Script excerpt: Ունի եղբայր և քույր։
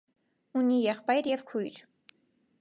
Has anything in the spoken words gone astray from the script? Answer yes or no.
no